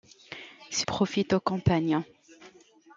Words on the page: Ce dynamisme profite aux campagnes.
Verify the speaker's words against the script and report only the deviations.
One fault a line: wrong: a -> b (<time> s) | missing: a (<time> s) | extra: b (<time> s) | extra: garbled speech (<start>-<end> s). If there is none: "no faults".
missing: dynamisme (0.9 s)